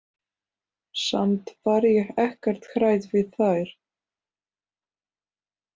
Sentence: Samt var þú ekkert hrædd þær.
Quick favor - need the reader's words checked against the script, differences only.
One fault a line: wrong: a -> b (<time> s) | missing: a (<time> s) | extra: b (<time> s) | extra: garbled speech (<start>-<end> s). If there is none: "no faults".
wrong: þú -> ég (1.9 s)
extra: við (3.1 s)